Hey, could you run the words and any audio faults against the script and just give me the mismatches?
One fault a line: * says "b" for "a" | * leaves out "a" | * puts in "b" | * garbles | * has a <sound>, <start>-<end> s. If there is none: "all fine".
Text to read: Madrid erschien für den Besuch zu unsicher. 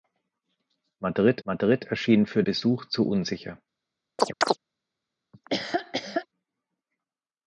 * puts in "madrid"
* leaves out "den"
* has a chirp, 4.2-4.6 s
* has a laugh, 5.3-6.3 s